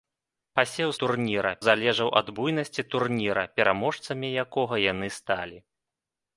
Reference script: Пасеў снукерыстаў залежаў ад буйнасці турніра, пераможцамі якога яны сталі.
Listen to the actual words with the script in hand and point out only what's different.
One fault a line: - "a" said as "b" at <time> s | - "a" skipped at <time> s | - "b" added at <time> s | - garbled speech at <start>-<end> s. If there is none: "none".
- "снукерыстаў" said as "турніра" at 1.0 s